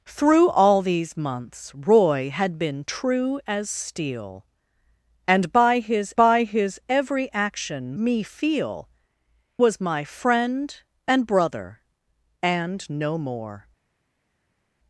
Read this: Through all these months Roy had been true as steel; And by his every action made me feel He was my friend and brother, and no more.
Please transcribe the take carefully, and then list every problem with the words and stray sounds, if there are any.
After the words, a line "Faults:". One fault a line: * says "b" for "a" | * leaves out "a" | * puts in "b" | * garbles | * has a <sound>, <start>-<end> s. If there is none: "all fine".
Through all these months Roy had been true as steel; And by his by his every action me feel Was my friend and brother, and no more.
Faults:
* puts in "by his"
* leaves out "made"
* leaves out "He"